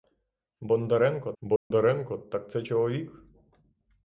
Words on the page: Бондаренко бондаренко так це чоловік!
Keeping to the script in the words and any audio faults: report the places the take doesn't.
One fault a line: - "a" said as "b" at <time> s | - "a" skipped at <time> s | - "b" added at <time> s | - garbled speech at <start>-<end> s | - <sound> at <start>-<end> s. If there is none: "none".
- dropout at 1.6-1.7 s